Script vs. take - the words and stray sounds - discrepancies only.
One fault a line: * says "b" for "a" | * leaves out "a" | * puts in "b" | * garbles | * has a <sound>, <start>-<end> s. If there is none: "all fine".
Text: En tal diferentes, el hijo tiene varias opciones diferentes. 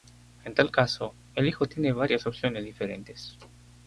* says "caso" for "diferentes"